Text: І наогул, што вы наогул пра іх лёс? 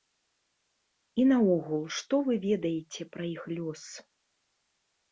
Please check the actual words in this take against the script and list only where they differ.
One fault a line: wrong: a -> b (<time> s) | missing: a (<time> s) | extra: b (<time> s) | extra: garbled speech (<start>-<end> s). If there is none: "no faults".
wrong: наогул -> ведаеце (2.5 s)